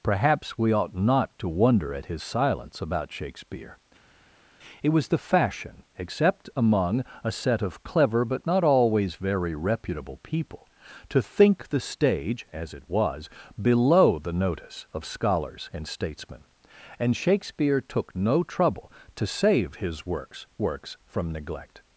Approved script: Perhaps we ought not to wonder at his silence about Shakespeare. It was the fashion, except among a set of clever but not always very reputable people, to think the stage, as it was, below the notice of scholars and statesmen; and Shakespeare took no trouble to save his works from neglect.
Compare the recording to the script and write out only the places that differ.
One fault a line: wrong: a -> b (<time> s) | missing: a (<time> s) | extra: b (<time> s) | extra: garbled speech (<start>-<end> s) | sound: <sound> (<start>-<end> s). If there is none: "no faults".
extra: works (20.6 s)